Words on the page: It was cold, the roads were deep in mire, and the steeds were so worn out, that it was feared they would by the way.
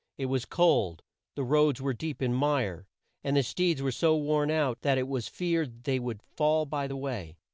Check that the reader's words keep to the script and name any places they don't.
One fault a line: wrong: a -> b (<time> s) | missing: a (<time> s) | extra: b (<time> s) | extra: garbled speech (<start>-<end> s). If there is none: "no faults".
extra: fall (6.2 s)